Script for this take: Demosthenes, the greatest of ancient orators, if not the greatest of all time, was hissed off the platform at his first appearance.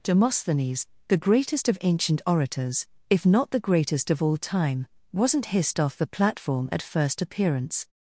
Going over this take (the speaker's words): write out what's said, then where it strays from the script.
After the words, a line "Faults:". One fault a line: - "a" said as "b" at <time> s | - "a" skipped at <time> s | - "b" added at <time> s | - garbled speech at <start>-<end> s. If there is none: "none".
Demosthenes, the greatest of ancient orators, if not the greatest of all time, wasn't hissed off the platform at first appearance.
Faults:
- "was" said as "wasn't" at 5.1 s
- "his" skipped at 6.8 s